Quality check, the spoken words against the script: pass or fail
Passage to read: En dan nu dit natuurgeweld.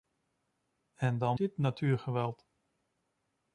fail